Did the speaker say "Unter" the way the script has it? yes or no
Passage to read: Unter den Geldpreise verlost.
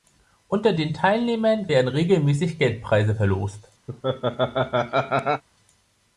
yes